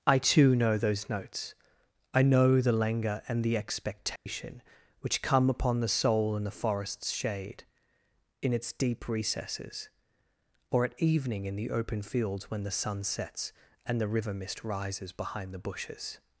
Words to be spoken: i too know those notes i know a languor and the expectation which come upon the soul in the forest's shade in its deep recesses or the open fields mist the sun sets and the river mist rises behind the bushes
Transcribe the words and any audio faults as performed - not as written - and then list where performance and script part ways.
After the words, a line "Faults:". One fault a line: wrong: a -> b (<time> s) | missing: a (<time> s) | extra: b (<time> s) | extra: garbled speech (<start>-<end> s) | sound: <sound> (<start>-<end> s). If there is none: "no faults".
i too know those notes i know the languor and the expectation which come upon the soul in the forest's shade in its deep recesses or at evening in the open fields when the sun sets and the river mist rises behind the bushes
Faults:
wrong: a -> the (2.6 s)
sound: dropout (4.2-4.3 s)
extra: at evening in (10.8 s)
wrong: mist -> when (12.5 s)